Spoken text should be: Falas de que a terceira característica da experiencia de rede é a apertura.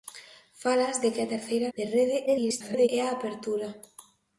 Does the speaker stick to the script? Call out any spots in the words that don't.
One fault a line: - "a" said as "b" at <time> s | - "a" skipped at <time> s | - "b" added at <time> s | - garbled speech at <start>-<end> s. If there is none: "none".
- "característica da experiencia" skipped at 1.7 s
- garbled speech at 2.3-2.9 s